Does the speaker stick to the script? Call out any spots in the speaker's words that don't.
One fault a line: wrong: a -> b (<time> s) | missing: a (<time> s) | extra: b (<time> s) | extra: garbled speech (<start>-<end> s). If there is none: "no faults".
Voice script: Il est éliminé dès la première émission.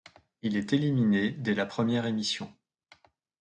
no faults